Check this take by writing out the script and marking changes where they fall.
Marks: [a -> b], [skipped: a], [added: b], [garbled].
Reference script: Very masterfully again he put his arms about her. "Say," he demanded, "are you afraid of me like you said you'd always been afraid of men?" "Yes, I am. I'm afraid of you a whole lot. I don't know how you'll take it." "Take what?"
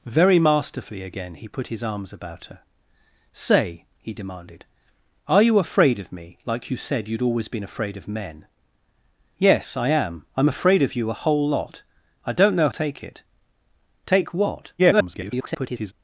Very masterfully again he put his arms about her. "Say," he demanded, "are you afraid of me like you said you'd always been afraid of men?" "Yes, I am. I'm afraid of you a whole lot. I don't know [skipped: how you'll] take it." "Take what?" [garbled]